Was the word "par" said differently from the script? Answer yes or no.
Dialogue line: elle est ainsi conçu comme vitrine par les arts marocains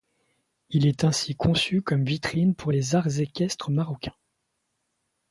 yes